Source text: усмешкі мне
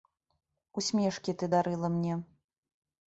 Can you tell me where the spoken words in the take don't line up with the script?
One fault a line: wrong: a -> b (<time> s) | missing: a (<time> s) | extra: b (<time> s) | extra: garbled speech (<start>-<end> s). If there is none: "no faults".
extra: ты дарыла (1.4 s)